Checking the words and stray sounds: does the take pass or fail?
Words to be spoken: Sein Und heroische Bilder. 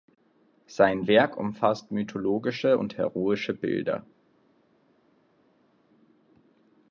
fail